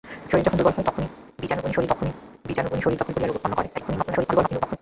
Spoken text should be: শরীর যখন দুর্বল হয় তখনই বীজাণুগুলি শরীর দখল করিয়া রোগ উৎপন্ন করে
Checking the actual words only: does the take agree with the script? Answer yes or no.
no